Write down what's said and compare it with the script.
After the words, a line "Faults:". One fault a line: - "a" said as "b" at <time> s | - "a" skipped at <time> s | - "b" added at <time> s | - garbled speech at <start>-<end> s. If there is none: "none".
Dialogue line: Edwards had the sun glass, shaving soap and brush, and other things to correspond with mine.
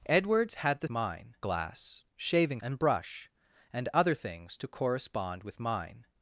Edwards had the mine glass, shaving and brush, and other things to correspond with mine.
Faults:
- "sun" said as "mine" at 0.9 s
- "soap" skipped at 2.6 s